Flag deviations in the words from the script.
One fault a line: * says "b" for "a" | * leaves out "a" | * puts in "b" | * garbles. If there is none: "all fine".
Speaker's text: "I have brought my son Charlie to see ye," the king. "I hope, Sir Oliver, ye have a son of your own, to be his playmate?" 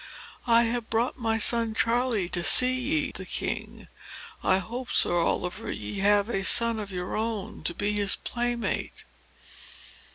all fine